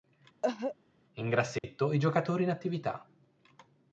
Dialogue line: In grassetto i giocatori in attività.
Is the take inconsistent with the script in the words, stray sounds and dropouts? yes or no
yes